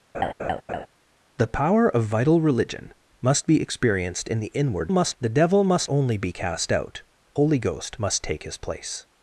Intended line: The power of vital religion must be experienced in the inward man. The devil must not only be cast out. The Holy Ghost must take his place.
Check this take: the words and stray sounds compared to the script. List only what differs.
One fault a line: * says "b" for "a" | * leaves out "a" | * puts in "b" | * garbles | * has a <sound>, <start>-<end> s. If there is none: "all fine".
* has a laugh, 0.1-0.9 s
* says "must" for "man"
* leaves out "not"
* leaves out "The"